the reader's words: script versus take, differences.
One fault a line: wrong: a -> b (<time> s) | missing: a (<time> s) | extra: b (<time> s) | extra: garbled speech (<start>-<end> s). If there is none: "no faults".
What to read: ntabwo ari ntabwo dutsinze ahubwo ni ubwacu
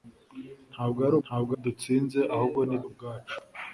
no faults